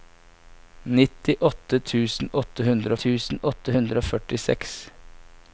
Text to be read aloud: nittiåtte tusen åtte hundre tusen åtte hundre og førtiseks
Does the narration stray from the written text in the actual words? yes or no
no